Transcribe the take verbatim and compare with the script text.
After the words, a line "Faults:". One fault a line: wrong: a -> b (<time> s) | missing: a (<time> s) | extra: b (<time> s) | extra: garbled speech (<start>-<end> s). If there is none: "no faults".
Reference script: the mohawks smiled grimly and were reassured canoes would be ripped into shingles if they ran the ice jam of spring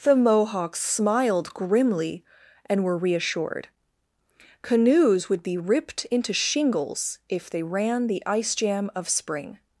the mohawks smiled grimly and were reassured canoes would be ripped into shingles if they ran the ice jam of spring
Faults:
no faults